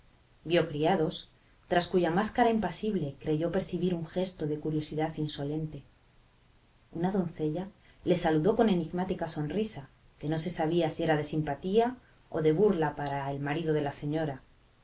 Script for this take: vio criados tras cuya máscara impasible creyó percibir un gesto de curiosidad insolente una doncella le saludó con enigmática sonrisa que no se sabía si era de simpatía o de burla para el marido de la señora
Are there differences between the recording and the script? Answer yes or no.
no